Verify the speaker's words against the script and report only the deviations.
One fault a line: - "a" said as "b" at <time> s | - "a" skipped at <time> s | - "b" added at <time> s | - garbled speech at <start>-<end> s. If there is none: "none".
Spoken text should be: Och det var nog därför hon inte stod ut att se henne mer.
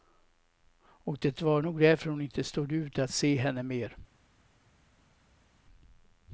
none